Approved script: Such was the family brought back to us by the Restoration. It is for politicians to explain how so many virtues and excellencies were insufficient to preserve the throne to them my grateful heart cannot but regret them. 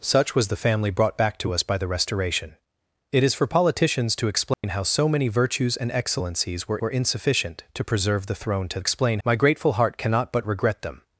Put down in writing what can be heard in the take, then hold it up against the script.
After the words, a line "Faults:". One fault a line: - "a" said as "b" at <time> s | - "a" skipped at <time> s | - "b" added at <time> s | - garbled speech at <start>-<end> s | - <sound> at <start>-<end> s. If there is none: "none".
Such was the family brought back to us by the Restoration. It is for politicians to explain how so many virtues and excellencies were were insufficient to preserve the throne to explain my grateful heart cannot but regret them.
Faults:
- dropout at 4.5-4.6 s
- "were" added at 6.8 s
- "them" said as "explain" at 8.8 s